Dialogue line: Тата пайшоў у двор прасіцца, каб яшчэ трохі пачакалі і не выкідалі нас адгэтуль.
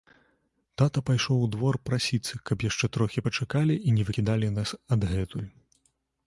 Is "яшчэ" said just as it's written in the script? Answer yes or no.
yes